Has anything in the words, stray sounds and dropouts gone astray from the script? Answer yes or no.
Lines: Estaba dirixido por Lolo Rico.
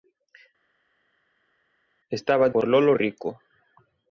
yes